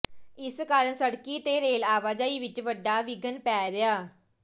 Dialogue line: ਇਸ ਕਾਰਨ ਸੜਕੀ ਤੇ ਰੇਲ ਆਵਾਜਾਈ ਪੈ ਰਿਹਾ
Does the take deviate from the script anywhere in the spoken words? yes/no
yes